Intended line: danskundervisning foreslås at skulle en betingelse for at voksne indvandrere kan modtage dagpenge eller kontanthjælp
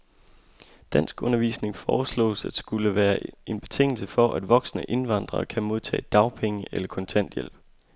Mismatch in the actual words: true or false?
true